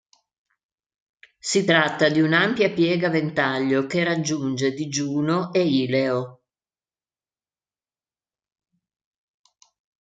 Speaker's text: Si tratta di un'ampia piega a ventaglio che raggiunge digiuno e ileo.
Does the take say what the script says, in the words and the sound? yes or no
yes